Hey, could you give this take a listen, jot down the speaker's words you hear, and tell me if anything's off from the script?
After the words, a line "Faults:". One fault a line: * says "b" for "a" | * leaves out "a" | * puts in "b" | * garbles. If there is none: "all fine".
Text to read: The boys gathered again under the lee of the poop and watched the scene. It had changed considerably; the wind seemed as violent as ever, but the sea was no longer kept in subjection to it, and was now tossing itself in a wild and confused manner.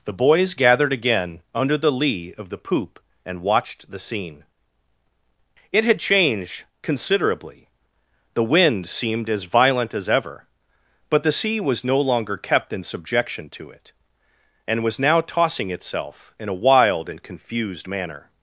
The boys gathered again under the lee of the poop and watched the scene. It had changed considerably; the wind seemed as violent as ever, but the sea was no longer kept in subjection to it, and was now tossing itself in a wild and confused manner.
Faults:
all fine